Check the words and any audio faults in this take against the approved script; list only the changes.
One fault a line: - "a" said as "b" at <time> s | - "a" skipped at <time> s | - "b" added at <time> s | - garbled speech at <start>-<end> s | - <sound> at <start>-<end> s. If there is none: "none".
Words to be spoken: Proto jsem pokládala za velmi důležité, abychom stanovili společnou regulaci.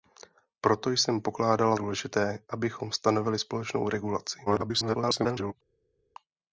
- "za velmi" skipped at 1.8 s
- garbled speech at 4.5-5.5 s